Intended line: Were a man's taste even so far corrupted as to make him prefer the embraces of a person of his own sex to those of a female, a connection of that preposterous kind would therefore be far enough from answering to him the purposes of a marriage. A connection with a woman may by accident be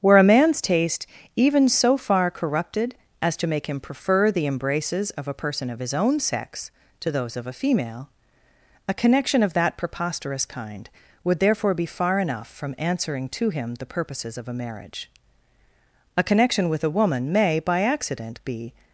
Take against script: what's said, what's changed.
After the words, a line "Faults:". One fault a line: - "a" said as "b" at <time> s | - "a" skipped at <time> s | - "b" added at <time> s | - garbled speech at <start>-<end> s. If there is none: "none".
Were a man's taste even so far corrupted as to make him prefer the embraces of a person of his own sex to those of a female, a connection of that preposterous kind would therefore be far enough from answering to him the purposes of a marriage. A connection with a woman may by accident be
Faults:
none